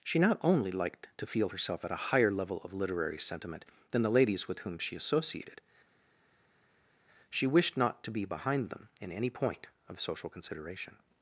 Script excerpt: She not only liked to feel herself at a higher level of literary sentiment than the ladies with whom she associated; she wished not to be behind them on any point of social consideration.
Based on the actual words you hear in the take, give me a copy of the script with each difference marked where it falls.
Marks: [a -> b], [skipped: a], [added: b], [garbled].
She not only liked to feel herself at a higher level of literary sentiment than the ladies with whom she associated; she wished not to be behind them [on -> in] any point of social consideration.